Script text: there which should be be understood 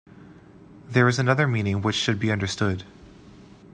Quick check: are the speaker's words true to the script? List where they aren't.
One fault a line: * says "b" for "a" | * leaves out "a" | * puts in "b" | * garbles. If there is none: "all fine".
* puts in "is another meaning"
* leaves out "be"